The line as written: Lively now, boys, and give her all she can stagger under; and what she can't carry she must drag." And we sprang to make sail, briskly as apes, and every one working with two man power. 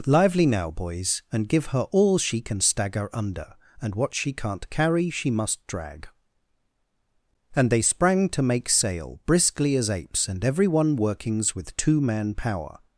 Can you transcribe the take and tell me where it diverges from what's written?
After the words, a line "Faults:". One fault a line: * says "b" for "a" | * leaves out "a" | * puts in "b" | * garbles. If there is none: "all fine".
Lively now, boys, and give her all she can stagger under; and what she can't carry she must drag." And they sprang to make sail, briskly as apes, and every one workings with two man power.
Faults:
* says "they" for "we"
* says "workings" for "working"